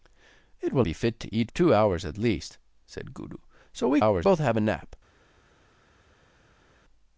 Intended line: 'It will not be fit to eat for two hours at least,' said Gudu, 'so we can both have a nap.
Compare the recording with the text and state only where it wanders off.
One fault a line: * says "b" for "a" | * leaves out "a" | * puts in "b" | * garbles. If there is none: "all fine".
* leaves out "not"
* leaves out "for"
* says "hours" for "can"